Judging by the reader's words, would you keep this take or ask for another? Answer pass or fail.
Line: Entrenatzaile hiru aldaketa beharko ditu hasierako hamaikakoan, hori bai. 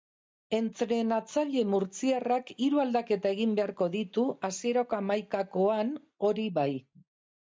fail